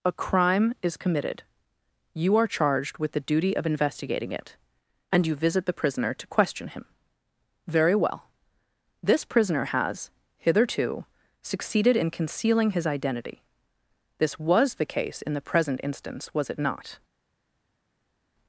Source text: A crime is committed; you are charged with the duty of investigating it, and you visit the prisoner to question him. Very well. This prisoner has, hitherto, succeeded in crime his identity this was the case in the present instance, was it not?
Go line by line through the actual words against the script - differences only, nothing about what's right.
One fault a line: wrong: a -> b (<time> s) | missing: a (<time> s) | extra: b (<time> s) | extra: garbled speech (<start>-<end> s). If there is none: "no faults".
wrong: crime -> concealing (12.1 s)